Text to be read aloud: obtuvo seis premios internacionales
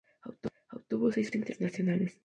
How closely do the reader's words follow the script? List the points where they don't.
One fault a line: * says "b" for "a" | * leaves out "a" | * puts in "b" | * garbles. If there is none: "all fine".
* leaves out "premios"